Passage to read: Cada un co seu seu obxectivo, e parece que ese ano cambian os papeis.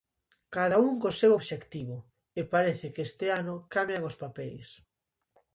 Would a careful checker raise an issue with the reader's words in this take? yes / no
yes